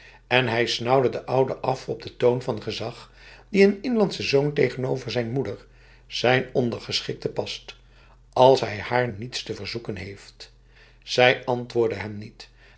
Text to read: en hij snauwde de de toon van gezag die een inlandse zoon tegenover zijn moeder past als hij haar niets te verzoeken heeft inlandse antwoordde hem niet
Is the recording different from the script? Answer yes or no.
yes